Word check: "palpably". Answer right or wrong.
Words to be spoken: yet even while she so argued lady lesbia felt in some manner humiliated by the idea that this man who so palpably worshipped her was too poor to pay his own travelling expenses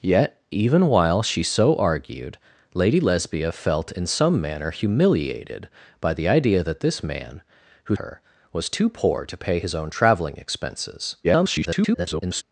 wrong